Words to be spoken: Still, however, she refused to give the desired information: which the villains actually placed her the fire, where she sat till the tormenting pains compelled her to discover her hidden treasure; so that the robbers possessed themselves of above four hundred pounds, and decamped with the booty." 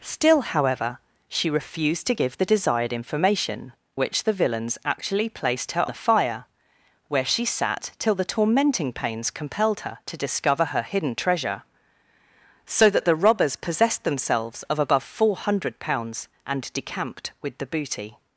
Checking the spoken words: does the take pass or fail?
pass